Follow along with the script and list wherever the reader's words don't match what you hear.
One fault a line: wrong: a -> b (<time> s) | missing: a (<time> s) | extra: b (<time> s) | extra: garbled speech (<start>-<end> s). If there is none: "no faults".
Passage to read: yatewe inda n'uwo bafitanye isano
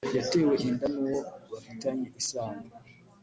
no faults